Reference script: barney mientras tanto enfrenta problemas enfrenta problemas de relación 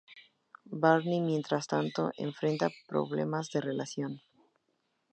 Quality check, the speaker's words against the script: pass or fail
fail